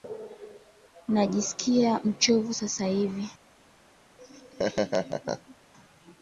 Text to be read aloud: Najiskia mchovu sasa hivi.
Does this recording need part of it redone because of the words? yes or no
no